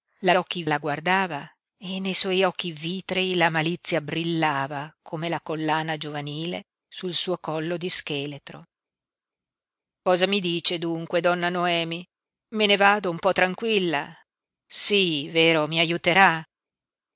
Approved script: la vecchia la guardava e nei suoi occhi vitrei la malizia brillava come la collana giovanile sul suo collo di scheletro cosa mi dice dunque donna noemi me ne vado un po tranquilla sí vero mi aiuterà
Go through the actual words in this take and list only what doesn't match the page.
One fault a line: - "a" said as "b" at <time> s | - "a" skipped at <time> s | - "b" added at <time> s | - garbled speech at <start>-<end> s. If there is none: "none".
- "vecchia" said as "occhi" at 0.3 s